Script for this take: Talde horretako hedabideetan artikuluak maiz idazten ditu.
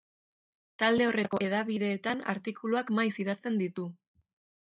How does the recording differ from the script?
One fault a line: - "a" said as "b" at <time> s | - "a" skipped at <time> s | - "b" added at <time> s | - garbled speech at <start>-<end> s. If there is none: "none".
none